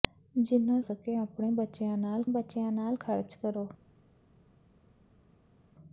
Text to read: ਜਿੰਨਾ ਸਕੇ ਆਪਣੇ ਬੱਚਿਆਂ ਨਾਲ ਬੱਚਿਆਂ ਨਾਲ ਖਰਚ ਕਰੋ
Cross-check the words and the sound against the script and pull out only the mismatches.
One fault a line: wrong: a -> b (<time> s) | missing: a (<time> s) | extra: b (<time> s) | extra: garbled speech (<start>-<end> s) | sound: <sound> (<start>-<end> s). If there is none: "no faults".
no faults